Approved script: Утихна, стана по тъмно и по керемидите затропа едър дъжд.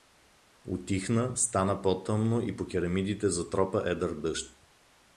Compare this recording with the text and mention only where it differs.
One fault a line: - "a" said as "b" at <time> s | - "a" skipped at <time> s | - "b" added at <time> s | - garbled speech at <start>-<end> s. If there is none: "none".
none